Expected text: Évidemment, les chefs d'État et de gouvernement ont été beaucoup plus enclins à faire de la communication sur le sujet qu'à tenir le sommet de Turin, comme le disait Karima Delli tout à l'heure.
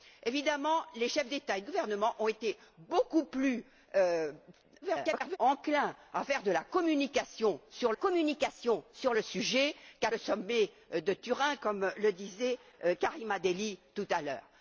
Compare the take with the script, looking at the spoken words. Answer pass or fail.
fail